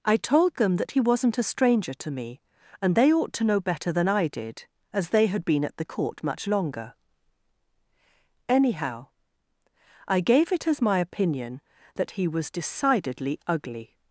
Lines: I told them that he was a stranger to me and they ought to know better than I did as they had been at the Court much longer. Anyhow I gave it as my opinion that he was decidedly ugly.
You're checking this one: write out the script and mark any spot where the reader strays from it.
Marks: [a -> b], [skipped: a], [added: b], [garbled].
I told them that he [was -> wasn't] a stranger to me and they ought to know better than I did as they had been at the Court much longer. Anyhow I gave it as my opinion that he was decidedly ugly.